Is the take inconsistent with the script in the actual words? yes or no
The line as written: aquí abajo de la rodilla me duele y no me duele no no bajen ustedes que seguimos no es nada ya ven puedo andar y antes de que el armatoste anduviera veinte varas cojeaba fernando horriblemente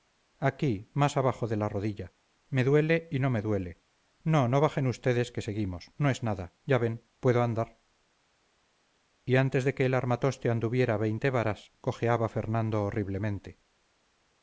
yes